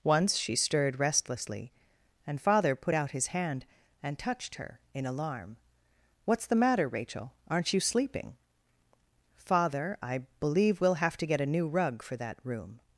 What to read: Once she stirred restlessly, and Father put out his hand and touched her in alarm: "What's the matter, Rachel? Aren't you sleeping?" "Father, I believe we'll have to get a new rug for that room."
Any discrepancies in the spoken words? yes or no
no